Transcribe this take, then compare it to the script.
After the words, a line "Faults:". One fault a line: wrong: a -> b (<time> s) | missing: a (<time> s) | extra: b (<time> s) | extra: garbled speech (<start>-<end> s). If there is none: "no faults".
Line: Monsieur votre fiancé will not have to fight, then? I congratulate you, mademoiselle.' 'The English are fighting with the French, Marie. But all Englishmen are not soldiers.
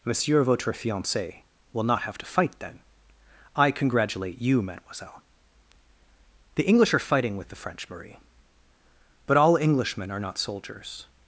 Monsieur votre fiancé will not have to fight, then? I congratulate you, mademoiselle.' 'The English are fighting with the French, Marie. But all Englishmen are not soldiers.
Faults:
no faults